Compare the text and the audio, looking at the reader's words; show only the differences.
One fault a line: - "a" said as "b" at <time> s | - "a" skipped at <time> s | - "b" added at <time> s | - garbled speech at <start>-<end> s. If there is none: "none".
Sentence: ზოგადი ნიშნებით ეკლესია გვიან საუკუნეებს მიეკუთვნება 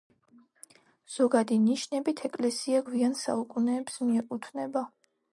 none